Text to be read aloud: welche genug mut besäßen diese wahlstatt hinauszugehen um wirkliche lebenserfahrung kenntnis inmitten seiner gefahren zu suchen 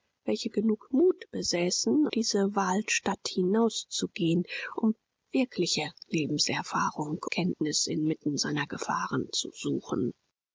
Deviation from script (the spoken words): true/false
false